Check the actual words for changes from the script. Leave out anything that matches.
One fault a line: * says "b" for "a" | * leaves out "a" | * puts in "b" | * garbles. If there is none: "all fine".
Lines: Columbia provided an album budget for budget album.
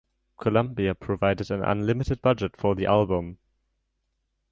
* says "unlimited" for "album"
* says "the" for "budget"